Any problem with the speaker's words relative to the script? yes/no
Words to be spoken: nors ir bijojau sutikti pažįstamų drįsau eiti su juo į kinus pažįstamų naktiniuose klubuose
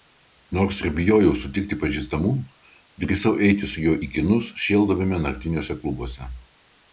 yes